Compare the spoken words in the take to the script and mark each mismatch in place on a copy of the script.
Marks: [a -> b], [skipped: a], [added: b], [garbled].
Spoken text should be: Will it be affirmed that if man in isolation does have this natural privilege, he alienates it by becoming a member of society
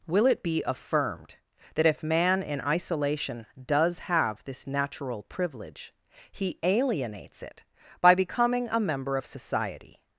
Will it be affirmed that if man in isolation does have this natural privilege, he alienates it by becoming a member of society